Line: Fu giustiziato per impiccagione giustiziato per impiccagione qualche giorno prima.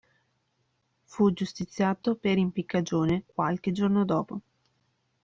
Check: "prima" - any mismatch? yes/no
yes